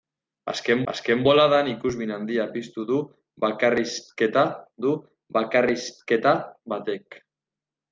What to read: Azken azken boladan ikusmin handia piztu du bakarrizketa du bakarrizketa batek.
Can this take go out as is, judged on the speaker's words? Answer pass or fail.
pass